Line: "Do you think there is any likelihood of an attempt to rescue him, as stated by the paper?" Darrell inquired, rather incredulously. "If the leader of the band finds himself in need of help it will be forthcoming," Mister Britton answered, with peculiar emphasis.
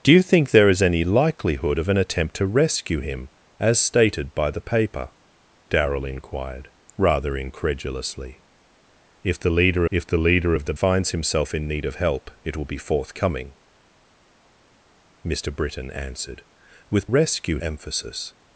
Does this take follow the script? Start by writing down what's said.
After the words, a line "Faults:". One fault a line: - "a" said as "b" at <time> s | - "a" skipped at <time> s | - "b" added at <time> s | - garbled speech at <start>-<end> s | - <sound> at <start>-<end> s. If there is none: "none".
"Do you think there is any likelihood of an attempt to rescue him, as stated by the paper?" Darrell inquired, rather incredulously. "If the leader if the leader of the finds himself in need of help it will be forthcoming," Mister Britton answered, with rescue emphasis.
Faults:
- "if the leader" added at 9.9 s
- "band" skipped at 10.8 s
- "peculiar" said as "rescue" at 17.0 s